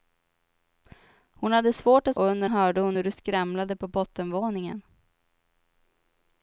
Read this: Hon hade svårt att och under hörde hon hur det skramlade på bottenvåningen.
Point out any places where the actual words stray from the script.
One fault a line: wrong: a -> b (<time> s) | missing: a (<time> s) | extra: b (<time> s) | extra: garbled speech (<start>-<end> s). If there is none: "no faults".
no faults